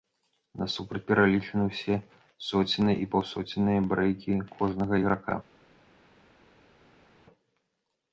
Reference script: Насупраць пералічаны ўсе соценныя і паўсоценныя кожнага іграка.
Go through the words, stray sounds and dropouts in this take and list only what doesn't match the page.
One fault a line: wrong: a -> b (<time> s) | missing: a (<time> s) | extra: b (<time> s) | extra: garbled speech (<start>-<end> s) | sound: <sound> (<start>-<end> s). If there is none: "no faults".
extra: брэйкі (3.9 s)